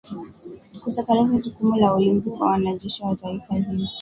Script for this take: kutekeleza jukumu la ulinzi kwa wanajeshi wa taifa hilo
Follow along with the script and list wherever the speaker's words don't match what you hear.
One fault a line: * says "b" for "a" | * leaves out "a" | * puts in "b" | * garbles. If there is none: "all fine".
all fine